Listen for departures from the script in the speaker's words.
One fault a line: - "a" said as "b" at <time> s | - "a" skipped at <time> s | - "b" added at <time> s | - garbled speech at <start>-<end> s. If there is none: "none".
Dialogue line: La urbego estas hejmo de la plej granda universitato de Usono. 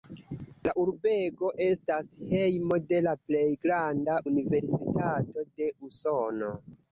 none